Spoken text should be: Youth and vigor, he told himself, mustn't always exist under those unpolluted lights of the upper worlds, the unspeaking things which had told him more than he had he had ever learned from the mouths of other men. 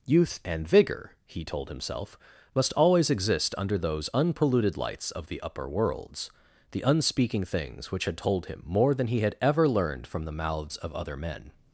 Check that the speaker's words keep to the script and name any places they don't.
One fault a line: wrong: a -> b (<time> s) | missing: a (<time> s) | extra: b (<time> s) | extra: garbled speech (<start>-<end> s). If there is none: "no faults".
wrong: mustn't -> must (2.5 s)
missing: he had (9.4 s)